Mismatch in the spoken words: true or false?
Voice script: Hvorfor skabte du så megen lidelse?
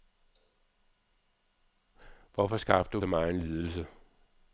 false